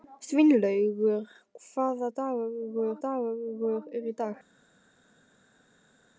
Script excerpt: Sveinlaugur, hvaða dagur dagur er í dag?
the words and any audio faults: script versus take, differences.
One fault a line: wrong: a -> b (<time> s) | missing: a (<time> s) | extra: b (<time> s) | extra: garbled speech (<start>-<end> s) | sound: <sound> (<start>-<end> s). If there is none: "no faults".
no faults